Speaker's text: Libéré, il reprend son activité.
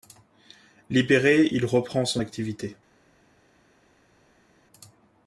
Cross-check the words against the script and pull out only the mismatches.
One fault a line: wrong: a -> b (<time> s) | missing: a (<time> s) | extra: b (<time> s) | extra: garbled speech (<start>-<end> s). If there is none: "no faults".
no faults